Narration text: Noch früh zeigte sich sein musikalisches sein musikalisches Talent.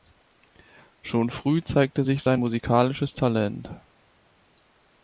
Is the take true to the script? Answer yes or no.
no